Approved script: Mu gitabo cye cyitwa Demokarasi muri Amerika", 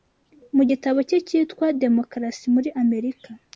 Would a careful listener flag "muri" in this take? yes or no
no